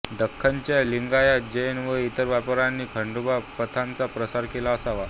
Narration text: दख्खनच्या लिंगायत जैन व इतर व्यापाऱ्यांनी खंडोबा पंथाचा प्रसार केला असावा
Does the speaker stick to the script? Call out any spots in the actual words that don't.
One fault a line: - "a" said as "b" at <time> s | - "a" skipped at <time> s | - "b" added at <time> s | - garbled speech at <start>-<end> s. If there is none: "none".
none